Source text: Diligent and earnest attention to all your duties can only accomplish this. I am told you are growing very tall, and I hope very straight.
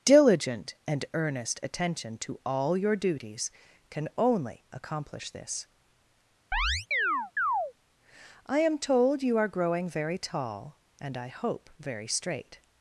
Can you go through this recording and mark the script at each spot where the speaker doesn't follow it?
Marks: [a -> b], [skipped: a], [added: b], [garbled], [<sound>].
Diligent and earnest attention to all your duties can only accomplish this. [chirp] I am told you are growing very tall, and I hope very straight.